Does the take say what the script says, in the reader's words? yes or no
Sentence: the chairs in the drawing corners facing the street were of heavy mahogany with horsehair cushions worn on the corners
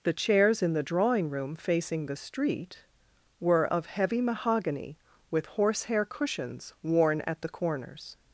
no